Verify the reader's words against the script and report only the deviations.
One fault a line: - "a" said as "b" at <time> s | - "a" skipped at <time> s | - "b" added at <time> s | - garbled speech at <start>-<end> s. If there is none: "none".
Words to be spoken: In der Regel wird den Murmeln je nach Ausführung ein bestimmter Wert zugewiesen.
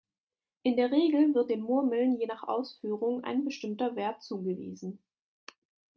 none